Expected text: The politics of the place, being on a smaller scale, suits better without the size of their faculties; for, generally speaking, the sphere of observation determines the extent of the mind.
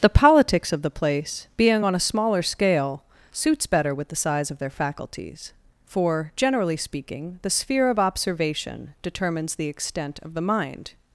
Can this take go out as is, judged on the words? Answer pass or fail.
fail